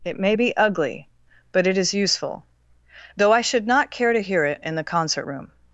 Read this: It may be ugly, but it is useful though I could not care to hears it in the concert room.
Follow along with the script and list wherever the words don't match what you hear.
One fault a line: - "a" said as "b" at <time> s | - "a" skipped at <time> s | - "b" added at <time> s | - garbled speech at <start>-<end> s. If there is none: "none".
- "could" said as "should" at 3.4 s
- "hears" said as "hear" at 4.2 s